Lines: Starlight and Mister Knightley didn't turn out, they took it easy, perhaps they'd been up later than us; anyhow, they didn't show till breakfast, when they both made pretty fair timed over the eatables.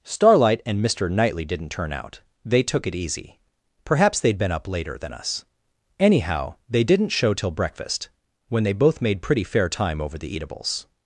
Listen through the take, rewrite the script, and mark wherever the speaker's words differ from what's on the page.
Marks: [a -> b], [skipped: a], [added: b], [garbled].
Starlight and Mister Knightley didn't turn out, they took it easy, perhaps they'd been up later than us; anyhow, they didn't show till breakfast, when they both made pretty fair [timed -> time] over the eatables.